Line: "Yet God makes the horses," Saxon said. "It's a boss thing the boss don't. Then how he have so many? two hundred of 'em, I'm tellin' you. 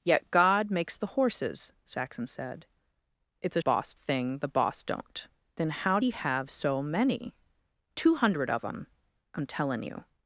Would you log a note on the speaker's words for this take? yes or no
no